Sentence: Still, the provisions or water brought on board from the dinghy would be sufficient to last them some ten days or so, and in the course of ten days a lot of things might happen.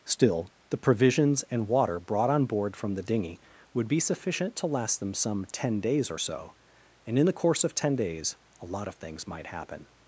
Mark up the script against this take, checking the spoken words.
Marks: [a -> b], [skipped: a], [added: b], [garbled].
Still, the provisions [or -> and] water brought on board from the dinghy would be sufficient to last them some ten days or so, and in the course of ten days a lot of things might happen.